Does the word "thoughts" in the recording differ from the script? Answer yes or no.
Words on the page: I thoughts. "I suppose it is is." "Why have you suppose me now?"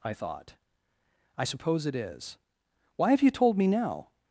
yes